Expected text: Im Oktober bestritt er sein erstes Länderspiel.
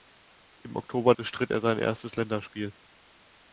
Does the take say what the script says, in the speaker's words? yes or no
yes